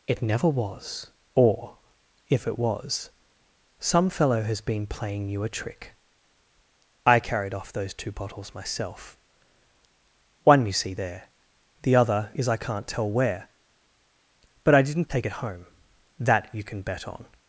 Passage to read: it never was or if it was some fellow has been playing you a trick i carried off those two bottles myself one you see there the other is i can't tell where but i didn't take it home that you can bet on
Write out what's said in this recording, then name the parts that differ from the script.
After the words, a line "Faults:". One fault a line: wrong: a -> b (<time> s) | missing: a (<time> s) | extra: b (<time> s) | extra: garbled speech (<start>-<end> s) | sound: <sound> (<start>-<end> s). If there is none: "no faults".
it never was or if it was some fellow has been playing you a trick i carried off those two bottles myself one you see there the other is i can't tell where but i didn't take it home that you can bet on
Faults:
no faults